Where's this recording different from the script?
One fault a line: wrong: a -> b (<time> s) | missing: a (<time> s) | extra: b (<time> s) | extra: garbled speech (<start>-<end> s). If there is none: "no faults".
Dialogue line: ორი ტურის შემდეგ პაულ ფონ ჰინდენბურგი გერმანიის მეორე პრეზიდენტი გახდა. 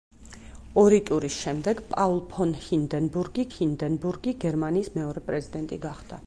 extra: ჰინდენბურგი (3.5 s)